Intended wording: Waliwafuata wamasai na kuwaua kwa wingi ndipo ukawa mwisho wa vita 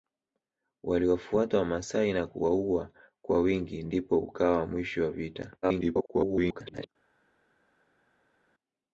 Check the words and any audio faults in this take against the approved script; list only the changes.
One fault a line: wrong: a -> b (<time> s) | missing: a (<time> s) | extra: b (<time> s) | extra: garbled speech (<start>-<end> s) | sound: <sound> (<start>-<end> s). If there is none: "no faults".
extra: garbled speech (5.6-6.9 s)